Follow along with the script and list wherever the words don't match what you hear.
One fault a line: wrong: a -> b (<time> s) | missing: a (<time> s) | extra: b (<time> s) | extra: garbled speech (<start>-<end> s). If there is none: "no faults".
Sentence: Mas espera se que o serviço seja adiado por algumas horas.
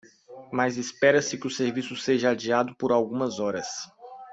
no faults